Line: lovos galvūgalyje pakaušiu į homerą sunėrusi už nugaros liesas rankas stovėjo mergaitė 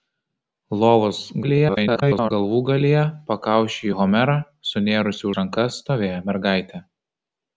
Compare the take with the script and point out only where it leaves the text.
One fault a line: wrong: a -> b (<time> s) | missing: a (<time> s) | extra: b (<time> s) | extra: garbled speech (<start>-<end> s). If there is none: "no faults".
extra: garbled speech (1.4-2.3 s)
missing: už nugaros liesas (5.3 s)